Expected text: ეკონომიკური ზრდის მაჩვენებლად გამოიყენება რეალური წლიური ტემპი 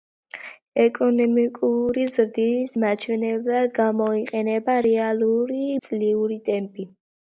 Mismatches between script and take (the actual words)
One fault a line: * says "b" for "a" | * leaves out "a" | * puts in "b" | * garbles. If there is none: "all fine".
all fine